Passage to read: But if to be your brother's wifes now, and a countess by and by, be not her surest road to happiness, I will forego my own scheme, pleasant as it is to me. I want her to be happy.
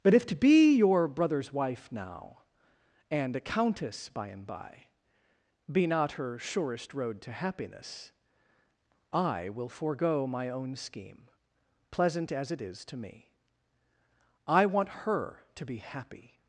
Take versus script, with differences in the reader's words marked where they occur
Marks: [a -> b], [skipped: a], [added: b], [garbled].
But if to be your brother's [wifes -> wife] now, and a countess by and by, be not her surest road to happiness, I will forego my own scheme, pleasant as it is to me. I want her to be happy.